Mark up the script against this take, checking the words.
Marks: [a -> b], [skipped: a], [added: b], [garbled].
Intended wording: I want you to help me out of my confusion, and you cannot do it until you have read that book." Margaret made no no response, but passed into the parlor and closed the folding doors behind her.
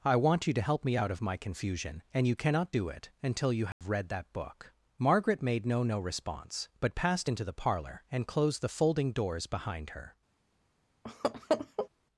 I want you to help me out of my confusion, and you cannot do it until you have read that book." Margaret made no no response, but passed into the parlor and closed the folding doors behind her.